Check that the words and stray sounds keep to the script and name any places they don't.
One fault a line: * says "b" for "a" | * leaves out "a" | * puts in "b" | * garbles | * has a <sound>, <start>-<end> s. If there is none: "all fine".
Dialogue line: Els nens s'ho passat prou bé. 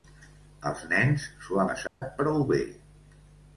* has a dropout, 1.9-2.0 s